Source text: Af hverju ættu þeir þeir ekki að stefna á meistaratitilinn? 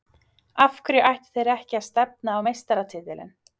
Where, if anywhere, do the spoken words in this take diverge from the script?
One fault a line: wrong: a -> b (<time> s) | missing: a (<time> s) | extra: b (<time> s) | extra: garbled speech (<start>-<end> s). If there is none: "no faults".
missing: þeir (1.5 s)